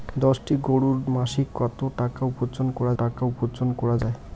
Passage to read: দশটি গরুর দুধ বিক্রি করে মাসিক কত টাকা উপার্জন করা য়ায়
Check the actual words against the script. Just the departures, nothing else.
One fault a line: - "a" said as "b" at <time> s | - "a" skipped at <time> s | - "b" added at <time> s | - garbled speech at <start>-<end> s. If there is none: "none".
- "দুধ বিক্রি করে মাসিক কত" said as "মাসিক কত টাকা উপার্জন করা" at 1.2 s